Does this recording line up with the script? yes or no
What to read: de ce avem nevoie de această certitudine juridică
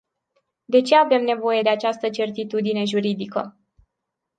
yes